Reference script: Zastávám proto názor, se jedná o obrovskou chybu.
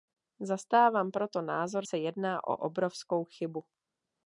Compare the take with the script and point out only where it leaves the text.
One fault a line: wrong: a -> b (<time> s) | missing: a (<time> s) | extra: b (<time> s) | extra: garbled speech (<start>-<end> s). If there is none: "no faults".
no faults